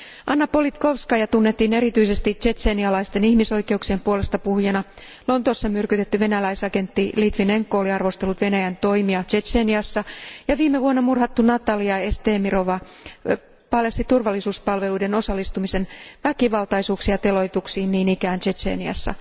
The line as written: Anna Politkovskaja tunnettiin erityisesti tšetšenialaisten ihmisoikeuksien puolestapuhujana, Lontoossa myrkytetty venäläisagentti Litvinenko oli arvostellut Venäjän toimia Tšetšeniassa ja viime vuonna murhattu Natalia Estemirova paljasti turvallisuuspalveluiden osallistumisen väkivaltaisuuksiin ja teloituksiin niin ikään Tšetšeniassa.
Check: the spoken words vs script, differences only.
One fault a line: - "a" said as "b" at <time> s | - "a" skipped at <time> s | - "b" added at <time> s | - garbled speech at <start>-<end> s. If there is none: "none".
none